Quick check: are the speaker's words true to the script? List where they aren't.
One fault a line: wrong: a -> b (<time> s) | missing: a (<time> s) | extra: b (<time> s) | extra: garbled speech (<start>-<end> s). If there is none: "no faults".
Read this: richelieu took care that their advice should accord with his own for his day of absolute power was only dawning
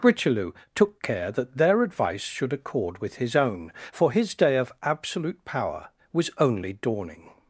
no faults